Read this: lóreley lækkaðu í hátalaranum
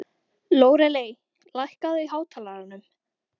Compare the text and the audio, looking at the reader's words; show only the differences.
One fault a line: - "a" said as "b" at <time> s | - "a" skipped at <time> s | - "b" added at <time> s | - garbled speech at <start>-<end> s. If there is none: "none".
none